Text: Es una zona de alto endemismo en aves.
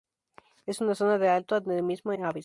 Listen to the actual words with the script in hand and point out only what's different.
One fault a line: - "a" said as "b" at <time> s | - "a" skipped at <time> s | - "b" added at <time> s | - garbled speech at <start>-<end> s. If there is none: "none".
- "en" skipped at 2.1 s